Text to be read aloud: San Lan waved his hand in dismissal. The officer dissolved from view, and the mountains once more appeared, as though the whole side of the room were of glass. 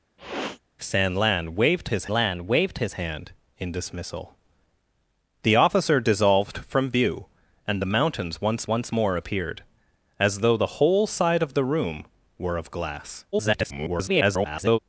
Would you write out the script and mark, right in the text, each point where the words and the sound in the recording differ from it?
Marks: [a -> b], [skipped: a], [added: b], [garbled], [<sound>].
[sniff] San Lan waved his [added: Lan waved his] hand in dismissal. The officer dissolved from view, and the mountains once [added: once] more appeared, as though the whole side of the room were of glass. [garbled]